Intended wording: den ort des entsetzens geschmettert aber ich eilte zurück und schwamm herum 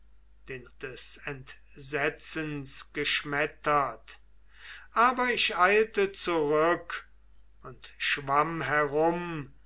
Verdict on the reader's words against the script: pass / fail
fail